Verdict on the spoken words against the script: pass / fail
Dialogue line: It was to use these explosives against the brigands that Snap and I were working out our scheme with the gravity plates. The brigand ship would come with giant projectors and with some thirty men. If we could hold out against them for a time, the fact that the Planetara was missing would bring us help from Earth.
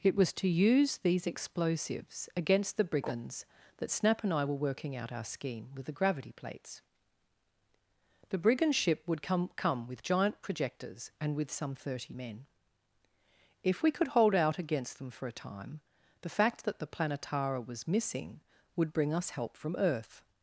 fail